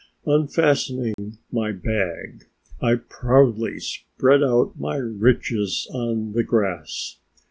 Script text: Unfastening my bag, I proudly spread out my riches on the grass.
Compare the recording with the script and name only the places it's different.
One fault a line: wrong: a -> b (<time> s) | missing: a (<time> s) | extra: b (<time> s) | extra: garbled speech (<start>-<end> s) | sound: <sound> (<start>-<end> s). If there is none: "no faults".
sound: dropout (1.1-1.2 s)